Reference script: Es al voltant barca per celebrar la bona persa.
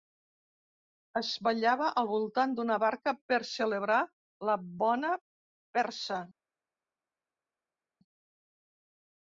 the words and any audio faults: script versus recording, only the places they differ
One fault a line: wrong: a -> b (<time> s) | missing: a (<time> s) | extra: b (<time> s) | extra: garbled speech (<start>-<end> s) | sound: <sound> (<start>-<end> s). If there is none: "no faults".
extra: ballava (1.5 s)
extra: d'una (2.6 s)